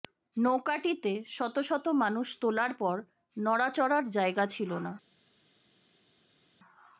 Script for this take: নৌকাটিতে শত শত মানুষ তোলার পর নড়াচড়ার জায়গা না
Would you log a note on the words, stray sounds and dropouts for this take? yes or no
yes